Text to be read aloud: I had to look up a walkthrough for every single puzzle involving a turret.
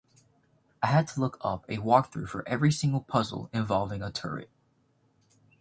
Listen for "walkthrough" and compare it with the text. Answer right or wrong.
right